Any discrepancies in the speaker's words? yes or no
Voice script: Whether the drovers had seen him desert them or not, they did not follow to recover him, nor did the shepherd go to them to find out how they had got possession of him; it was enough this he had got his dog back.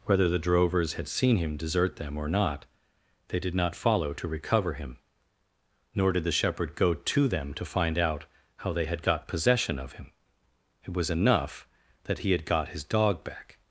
yes